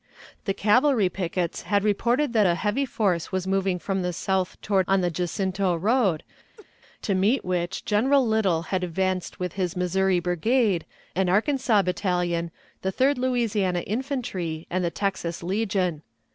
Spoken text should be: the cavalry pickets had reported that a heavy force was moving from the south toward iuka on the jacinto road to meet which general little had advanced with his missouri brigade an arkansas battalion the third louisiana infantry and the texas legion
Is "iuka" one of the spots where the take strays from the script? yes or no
yes